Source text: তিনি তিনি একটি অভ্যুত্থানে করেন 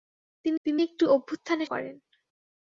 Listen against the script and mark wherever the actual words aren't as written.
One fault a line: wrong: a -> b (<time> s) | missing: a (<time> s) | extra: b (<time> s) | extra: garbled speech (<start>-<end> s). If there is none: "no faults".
no faults